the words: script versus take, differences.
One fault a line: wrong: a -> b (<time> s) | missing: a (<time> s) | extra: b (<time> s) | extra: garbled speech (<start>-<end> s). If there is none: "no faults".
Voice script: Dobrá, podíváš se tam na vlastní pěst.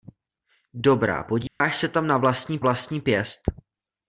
extra: vlastní (2.6 s)